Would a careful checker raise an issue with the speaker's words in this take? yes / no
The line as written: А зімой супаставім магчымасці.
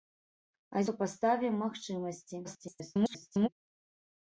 yes